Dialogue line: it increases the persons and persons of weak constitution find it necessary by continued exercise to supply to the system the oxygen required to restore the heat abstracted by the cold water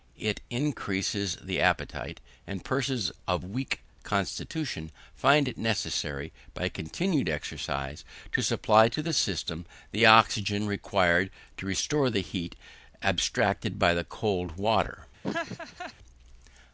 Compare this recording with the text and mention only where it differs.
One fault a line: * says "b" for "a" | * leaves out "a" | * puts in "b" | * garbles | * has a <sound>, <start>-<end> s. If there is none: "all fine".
* says "appetite" for "persons"
* has a laugh, 15.2-15.9 s